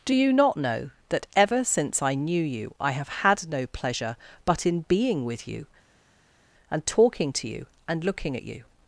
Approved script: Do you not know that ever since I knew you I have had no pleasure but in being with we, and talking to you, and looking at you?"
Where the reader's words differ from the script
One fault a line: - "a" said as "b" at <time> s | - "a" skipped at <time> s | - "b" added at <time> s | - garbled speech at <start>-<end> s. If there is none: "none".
- "we" said as "you" at 5.5 s